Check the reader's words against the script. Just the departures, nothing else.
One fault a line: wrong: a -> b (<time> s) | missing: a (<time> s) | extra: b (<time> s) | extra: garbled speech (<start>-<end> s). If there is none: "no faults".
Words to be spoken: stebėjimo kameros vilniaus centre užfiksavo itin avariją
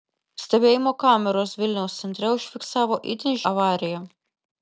no faults